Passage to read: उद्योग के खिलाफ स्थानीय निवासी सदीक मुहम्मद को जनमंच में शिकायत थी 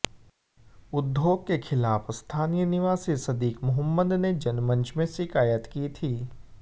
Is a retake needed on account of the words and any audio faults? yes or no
yes